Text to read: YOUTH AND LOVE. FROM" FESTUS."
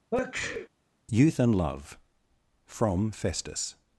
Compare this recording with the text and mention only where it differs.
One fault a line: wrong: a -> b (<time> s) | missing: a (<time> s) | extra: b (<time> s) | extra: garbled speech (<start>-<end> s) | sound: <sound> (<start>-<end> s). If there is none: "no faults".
sound: sneeze (0.1-0.7 s)